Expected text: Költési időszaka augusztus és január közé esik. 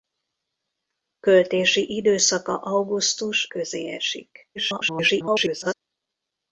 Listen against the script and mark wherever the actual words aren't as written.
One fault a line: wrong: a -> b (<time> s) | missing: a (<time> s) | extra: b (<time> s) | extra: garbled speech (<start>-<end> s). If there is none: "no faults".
missing: és január (3.5 s)
extra: garbled speech (4.6-5.7 s)